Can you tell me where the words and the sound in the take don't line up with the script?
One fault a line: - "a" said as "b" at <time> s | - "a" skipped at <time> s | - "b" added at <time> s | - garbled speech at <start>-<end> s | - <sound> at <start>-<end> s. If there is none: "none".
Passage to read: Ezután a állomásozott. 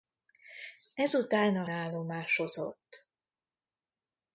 none